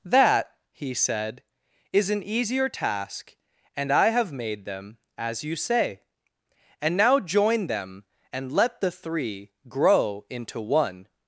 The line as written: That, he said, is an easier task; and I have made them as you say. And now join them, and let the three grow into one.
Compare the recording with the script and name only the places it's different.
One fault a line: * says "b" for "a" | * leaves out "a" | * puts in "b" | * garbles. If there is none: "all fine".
all fine